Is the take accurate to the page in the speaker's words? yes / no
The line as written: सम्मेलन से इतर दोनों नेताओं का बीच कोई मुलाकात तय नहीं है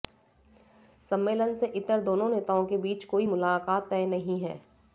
no